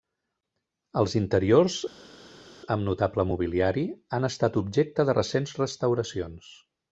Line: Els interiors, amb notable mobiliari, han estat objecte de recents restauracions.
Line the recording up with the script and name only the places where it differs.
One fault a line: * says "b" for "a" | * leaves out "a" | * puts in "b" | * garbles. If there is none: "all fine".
all fine